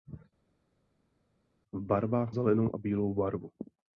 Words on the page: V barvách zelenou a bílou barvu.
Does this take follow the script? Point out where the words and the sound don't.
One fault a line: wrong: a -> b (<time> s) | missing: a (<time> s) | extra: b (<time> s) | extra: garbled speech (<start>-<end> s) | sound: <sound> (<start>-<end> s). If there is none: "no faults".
no faults